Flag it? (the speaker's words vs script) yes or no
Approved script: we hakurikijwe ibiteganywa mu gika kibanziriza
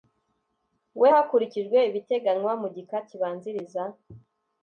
no